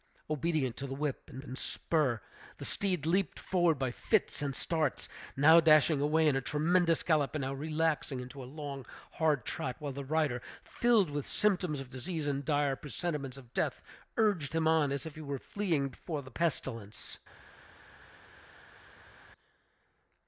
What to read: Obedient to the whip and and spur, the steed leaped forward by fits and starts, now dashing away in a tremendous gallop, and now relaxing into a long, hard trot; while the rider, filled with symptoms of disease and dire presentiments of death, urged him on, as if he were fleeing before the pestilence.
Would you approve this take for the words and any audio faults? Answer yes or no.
yes